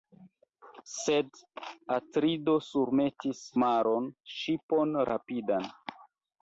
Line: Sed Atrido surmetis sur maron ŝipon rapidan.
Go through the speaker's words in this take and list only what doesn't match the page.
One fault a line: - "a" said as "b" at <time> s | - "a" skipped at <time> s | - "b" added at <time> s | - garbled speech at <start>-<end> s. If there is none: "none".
- "sur" skipped at 3.4 s